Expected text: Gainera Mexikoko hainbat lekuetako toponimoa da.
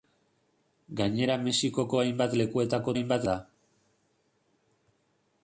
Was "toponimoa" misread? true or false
true